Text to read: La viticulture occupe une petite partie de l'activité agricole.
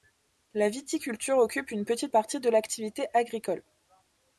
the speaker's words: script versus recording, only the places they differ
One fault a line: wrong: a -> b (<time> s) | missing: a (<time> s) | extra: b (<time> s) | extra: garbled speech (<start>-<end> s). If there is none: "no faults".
no faults